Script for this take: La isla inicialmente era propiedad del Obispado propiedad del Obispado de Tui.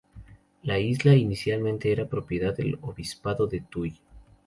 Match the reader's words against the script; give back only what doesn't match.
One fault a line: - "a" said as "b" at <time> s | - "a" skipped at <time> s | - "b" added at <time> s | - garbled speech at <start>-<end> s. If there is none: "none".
- "propiedad del Obispado" skipped at 3.5 s